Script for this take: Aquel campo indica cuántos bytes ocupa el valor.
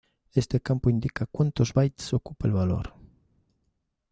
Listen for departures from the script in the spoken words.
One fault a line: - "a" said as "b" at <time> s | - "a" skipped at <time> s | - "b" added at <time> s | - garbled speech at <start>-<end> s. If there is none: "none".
- "Aquel" said as "Este" at 0.3 s